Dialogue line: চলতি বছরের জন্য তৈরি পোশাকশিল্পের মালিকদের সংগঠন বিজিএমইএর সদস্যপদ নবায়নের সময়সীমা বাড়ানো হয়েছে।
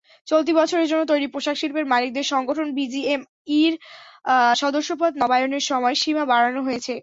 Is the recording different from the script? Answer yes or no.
no